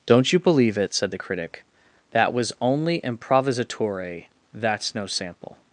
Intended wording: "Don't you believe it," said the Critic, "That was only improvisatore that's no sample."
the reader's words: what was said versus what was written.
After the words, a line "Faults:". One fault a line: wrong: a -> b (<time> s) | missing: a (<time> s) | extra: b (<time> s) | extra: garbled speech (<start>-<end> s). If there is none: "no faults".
"Don't you believe it," said the Critic, "That was only improvisatore that's no sample."
Faults:
no faults